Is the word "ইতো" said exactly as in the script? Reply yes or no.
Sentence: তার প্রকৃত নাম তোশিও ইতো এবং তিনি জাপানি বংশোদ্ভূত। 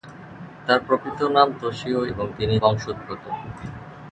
no